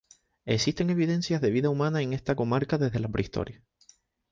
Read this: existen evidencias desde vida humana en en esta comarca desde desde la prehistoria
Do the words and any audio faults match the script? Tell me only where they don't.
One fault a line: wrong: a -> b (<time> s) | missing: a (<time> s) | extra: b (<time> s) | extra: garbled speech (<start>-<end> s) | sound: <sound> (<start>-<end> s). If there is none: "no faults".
wrong: desde -> de (1.4 s)
missing: en (2.1 s)
missing: desde (3.0 s)